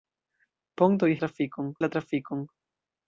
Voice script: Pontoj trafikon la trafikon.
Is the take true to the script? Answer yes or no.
yes